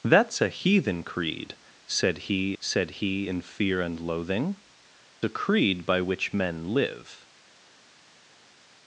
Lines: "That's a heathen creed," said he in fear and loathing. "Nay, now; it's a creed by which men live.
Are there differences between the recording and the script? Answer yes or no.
yes